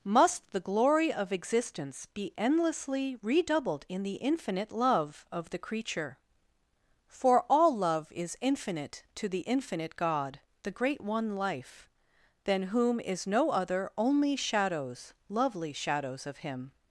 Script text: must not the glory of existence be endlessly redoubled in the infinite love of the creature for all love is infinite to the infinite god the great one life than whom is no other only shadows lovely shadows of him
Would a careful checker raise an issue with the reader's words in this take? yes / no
yes